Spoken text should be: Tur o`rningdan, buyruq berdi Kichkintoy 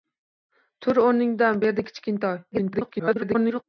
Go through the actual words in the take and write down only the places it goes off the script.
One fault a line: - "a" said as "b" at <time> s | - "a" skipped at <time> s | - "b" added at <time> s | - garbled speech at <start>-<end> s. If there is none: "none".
- "buyruq" skipped at 1.6 s
- garbled speech at 2.5-3.6 s